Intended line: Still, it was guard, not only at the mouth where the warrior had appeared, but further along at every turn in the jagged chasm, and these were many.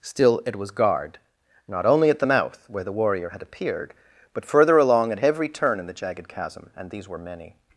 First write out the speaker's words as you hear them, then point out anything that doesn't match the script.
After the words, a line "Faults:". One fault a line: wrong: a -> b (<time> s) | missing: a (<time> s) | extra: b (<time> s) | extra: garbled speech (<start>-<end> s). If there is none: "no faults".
Still, it was guard, not only at the mouth where the warrior had appeared, but further along at every turn in the jagged chasm, and these were many.
Faults:
no faults